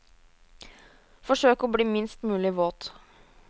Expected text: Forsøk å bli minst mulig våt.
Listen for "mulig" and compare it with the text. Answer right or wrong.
right